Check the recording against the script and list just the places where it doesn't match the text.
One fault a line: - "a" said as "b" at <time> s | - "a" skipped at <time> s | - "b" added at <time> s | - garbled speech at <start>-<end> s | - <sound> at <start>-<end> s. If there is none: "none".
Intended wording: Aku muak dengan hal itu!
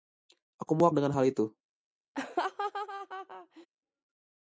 - laugh at 2.1-3.7 s